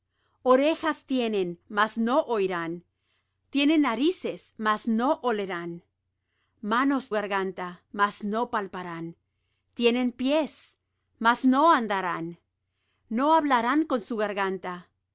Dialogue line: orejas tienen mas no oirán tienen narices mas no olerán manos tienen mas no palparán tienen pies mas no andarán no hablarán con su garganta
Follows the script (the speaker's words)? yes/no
no